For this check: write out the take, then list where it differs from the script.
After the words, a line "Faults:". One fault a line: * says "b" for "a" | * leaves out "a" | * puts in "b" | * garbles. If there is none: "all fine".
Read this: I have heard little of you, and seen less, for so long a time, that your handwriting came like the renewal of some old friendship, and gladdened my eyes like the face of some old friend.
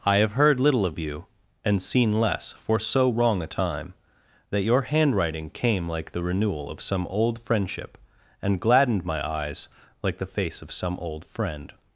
I have heard little of you, and seen less, for so wrong a time, that your handwriting came like the renewal of some old friendship, and gladdened my eyes like the face of some old friend.
Faults:
* says "wrong" for "long"